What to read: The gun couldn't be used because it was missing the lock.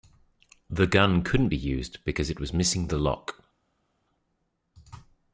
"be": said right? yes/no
yes